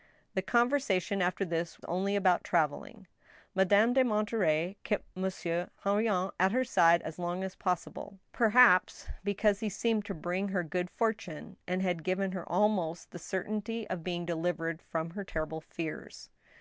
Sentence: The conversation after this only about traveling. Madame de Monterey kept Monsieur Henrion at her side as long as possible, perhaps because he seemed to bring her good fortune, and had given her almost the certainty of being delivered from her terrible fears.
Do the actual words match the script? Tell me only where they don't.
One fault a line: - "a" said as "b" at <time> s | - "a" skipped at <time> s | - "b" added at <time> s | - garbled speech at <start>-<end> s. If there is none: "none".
none